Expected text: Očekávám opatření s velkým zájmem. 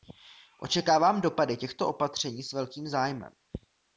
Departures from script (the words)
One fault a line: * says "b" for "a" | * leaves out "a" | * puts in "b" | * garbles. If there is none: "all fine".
* puts in "dopady těchto"